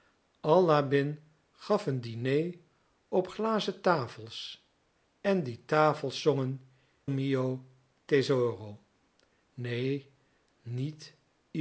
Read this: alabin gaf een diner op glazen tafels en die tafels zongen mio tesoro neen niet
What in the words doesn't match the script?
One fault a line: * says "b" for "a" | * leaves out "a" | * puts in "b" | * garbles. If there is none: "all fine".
all fine